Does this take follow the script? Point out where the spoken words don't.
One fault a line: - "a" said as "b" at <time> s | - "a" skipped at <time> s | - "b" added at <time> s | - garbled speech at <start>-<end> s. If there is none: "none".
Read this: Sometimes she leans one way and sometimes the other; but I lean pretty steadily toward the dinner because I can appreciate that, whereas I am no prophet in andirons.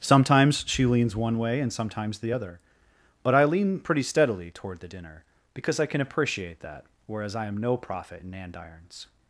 none